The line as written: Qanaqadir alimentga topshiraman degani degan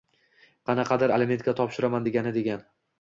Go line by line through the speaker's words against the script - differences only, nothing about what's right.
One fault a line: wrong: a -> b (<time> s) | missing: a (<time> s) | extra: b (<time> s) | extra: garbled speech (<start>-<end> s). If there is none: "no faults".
no faults